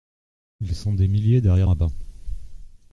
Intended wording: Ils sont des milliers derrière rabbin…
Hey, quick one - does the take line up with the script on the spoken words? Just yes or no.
yes